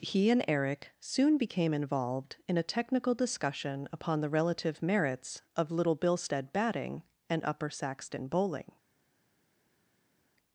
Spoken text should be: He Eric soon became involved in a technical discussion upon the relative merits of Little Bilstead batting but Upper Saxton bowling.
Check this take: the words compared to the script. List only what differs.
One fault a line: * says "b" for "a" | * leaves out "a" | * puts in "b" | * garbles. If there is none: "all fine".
* puts in "and"
* says "and" for "but"